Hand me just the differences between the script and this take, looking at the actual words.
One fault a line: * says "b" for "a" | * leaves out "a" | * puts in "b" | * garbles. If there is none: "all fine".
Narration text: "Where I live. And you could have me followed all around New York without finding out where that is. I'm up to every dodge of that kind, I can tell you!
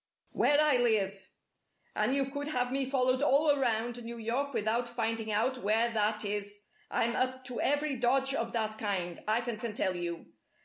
* puts in "can"